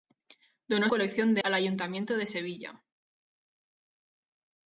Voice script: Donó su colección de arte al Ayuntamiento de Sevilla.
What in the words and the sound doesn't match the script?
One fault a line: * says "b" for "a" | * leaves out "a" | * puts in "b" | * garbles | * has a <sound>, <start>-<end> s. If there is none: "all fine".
* leaves out "su"
* leaves out "arte"